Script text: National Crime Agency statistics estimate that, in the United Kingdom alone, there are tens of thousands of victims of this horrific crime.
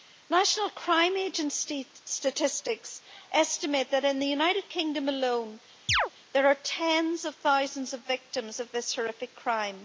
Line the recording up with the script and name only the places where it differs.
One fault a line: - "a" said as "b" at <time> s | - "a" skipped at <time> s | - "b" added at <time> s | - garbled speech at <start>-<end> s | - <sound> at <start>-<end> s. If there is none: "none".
- chirp at 5.9-6.1 s